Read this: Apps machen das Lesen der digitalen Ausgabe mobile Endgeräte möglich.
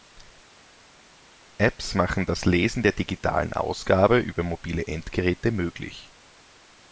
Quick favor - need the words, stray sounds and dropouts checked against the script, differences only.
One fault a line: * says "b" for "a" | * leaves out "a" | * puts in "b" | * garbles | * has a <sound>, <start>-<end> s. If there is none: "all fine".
* puts in "über"